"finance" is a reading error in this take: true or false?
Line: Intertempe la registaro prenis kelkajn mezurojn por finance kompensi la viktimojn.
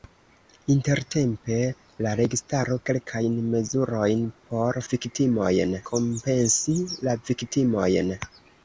true